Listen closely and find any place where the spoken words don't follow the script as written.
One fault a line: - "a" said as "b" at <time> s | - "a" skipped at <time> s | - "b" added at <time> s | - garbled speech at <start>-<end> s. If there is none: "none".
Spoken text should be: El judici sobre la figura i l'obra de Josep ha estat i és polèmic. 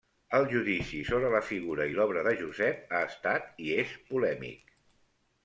none